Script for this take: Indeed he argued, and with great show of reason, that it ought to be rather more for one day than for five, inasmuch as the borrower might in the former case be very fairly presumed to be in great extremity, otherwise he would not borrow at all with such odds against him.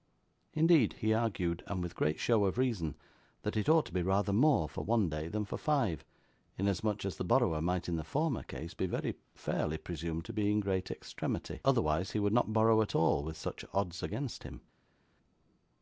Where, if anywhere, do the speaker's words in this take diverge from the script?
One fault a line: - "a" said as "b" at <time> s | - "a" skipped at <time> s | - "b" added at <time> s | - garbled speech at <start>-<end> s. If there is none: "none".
none